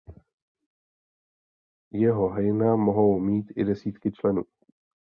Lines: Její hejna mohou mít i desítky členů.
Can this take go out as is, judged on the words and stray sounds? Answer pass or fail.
fail